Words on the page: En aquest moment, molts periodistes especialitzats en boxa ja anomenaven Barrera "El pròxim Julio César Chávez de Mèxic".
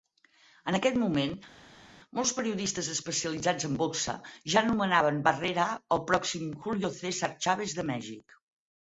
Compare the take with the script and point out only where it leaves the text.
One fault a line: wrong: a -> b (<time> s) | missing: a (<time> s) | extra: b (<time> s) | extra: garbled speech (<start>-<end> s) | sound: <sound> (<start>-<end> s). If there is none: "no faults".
no faults